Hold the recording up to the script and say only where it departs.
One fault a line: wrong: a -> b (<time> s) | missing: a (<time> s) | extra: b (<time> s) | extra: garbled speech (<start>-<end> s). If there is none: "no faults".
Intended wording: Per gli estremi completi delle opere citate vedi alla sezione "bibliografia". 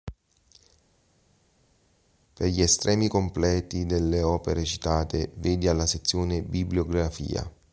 no faults